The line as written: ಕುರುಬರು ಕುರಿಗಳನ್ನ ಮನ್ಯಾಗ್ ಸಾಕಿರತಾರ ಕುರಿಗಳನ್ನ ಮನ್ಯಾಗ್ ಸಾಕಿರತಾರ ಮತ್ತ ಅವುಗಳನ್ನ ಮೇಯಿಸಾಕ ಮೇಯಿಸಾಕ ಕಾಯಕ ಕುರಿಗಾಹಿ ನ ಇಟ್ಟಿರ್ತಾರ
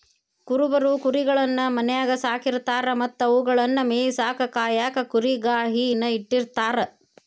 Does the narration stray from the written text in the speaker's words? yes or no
yes